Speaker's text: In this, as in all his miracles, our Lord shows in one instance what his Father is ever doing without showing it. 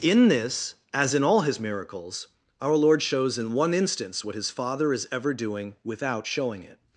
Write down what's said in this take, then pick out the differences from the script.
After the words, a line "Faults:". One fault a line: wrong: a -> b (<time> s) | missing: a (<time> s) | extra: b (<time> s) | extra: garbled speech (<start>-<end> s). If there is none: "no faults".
In this, as in all his miracles, our Lord shows in one instance what his Father is ever doing without showing it.
Faults:
no faults